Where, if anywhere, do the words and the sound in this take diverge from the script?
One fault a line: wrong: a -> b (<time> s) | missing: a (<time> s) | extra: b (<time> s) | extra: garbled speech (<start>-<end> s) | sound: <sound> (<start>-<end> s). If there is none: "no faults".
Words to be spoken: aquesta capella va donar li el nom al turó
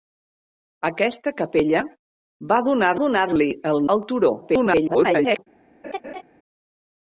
extra: donar (3.0 s)
missing: nom (3.8 s)
extra: garbled speech (4.4-5.4 s)
sound: laugh (5.8-6.2 s)